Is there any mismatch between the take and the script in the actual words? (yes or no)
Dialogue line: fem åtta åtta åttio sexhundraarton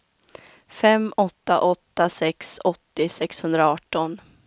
yes